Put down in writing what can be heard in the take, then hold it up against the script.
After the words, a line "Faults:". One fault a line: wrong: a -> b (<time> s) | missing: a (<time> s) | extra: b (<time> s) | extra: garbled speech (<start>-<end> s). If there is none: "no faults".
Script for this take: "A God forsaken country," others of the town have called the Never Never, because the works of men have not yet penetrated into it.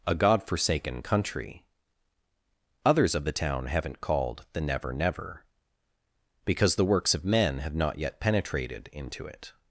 "A God forsaken country," others of the town haven't called the Never Never, because the works of men have not yet penetrated into it.
Faults:
wrong: have -> haven't (3.7 s)